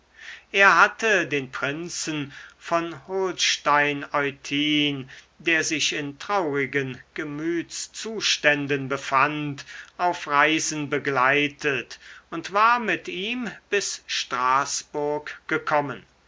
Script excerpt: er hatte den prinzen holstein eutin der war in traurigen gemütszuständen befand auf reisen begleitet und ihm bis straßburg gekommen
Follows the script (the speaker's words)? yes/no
no